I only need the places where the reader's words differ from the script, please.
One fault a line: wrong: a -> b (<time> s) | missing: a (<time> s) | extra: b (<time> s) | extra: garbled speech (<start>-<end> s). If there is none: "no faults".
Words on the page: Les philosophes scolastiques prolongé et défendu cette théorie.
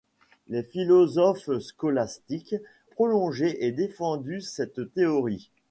no faults